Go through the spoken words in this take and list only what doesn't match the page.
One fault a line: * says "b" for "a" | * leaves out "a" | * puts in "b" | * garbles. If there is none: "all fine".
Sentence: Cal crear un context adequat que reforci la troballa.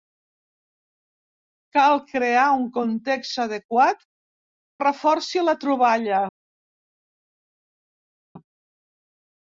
* leaves out "que"